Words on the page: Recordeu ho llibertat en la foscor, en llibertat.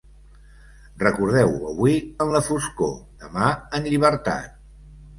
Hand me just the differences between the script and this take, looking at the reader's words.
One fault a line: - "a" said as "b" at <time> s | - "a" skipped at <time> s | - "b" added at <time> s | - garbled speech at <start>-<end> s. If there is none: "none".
- "llibertat" said as "avui" at 1.7 s
- "demà" added at 3.2 s